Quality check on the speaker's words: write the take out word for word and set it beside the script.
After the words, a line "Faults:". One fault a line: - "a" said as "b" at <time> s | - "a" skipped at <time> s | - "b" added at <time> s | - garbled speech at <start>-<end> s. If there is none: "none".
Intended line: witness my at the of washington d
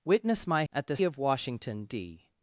witness my at the of washington d
Faults:
none